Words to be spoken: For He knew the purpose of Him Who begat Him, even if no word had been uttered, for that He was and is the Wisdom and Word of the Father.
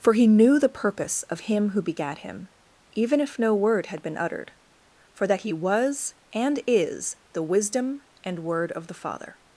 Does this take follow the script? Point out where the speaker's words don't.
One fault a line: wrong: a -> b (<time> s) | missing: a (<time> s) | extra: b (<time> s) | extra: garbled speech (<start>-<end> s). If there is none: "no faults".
no faults